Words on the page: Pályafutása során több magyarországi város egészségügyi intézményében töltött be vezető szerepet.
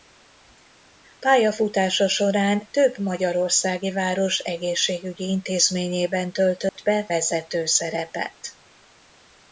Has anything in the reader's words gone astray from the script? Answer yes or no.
no